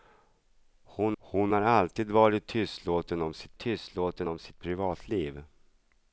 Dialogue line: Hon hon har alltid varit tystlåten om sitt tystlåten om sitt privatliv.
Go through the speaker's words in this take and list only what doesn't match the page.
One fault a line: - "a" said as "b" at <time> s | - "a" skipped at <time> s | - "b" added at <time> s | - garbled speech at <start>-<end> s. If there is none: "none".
none